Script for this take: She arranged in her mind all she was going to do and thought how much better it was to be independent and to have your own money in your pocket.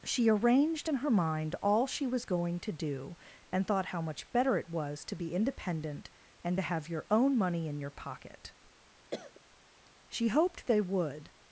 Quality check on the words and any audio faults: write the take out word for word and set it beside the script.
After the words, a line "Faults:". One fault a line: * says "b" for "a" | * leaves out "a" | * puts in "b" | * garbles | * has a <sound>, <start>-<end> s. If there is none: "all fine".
She arranged in her mind all she was going to do and thought how much better it was to be independent and to have your own money in your pocket. She hoped they would
Faults:
* has a cough, 9.1-9.4 s
* puts in "She hoped they would"